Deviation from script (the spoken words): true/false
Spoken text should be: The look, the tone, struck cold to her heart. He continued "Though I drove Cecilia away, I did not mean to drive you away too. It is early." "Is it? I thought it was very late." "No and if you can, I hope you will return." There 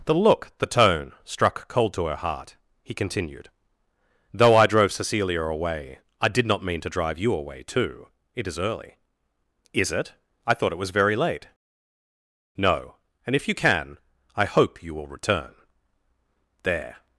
false